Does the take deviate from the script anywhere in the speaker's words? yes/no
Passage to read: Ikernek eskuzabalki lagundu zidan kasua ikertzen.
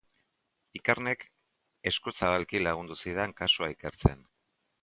no